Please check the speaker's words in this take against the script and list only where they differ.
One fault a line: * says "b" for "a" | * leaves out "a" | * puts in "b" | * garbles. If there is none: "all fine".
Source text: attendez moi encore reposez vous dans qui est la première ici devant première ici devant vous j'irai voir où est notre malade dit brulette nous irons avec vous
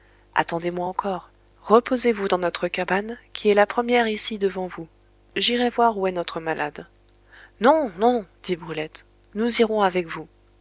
* puts in "notre cabane"
* leaves out "première ici devant"
* puts in "non non"